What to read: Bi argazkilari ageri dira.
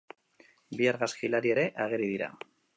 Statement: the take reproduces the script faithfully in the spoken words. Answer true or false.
false